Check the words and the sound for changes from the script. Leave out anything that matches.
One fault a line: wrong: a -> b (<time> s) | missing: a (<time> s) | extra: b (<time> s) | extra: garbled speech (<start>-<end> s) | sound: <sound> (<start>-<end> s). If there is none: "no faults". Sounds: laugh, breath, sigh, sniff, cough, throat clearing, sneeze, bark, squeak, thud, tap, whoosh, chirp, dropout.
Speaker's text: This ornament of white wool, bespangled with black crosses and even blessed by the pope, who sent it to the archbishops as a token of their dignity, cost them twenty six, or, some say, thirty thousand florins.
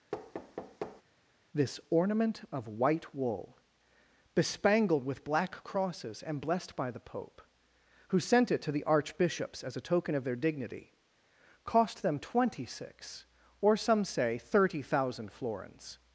sound: thud (0.1-1.0 s)
missing: even (6.4 s)